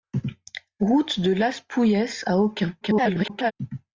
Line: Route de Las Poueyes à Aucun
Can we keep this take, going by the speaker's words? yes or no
no